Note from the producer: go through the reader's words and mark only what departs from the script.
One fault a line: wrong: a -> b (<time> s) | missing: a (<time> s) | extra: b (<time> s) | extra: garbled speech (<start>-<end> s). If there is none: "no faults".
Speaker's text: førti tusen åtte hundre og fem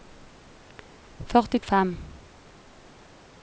missing: tusen åtte hundre (1.6 s)